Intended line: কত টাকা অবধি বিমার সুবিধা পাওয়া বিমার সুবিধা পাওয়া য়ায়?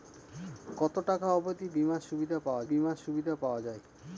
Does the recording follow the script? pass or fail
pass